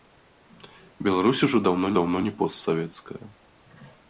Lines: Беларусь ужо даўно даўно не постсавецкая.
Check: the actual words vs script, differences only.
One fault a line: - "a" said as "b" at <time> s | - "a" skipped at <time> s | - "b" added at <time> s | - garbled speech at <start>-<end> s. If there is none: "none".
none